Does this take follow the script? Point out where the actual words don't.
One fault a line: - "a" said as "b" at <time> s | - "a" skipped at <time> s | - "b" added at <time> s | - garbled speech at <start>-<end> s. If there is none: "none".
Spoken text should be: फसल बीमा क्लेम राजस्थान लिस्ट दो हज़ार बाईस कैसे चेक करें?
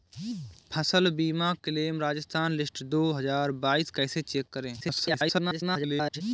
- garbled speech at 4.8-6.2 s